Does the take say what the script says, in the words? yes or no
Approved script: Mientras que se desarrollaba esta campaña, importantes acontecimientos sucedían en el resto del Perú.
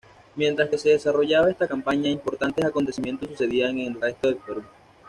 yes